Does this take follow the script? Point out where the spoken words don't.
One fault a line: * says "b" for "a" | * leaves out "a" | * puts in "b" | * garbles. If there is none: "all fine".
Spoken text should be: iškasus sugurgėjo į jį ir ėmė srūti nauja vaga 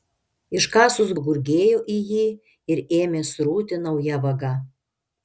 all fine